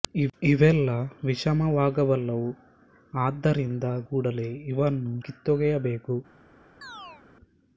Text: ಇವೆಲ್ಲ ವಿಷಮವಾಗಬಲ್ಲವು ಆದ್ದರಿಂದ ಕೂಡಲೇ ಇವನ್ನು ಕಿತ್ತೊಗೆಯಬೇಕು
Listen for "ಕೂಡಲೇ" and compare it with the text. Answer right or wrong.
right